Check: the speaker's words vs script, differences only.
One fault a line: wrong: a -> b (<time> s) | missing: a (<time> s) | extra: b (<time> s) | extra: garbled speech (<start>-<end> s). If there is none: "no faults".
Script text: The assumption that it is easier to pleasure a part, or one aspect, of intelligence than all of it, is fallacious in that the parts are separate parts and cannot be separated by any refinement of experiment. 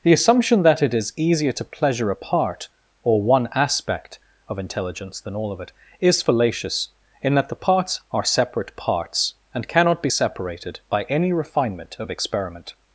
no faults